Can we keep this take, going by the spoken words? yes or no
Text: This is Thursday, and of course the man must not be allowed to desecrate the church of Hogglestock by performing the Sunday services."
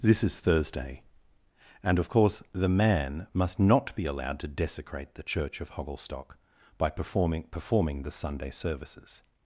no